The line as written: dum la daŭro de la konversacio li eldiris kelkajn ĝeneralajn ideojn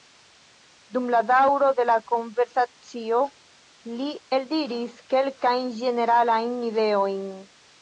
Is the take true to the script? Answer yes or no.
yes